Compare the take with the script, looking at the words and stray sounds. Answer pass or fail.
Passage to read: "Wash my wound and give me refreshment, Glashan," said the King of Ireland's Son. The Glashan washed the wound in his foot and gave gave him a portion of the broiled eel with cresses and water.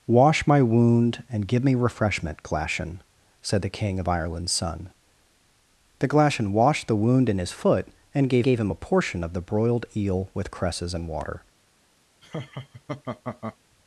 fail